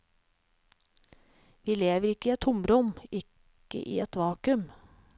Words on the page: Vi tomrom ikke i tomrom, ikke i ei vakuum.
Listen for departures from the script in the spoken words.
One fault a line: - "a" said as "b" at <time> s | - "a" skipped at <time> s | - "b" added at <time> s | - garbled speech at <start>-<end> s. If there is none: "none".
- "tomrom" said as "lever" at 1.8 s
- "et" added at 2.3 s
- "ei" said as "et" at 4.0 s